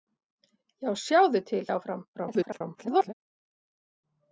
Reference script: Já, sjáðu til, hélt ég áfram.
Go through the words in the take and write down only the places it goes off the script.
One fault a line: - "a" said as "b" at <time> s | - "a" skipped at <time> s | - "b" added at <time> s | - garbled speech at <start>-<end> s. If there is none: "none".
- "hélt" skipped at 1.6 s
- garbled speech at 2.1-3.1 s